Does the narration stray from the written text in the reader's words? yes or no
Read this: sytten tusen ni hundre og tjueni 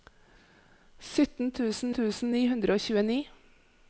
yes